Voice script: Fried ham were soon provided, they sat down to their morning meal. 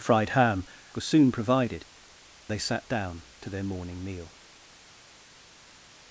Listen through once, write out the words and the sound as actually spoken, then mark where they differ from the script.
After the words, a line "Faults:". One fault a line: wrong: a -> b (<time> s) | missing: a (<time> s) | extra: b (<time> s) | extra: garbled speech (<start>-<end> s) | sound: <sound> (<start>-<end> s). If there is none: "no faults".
Fried ham were soon provided, they sat down to their morning meal.
Faults:
no faults